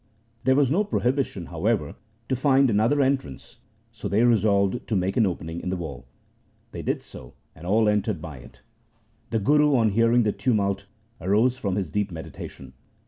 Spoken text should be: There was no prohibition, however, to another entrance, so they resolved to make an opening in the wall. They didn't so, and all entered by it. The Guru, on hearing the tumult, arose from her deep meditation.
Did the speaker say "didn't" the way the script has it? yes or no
no